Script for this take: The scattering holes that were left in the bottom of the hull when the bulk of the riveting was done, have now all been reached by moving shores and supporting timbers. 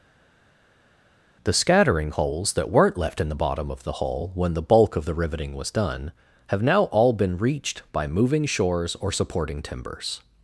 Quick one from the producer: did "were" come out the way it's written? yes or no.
no